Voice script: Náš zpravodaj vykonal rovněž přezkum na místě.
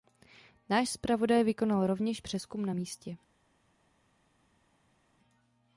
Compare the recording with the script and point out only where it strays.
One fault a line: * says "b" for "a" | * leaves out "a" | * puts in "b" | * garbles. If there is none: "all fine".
all fine